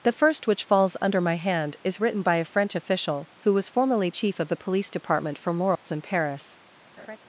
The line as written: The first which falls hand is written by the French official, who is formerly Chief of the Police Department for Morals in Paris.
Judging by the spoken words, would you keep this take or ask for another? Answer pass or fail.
fail